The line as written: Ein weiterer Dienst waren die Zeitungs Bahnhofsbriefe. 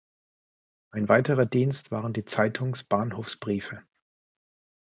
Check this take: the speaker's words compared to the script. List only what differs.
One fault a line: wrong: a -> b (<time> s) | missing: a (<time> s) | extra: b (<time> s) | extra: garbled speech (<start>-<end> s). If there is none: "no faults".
no faults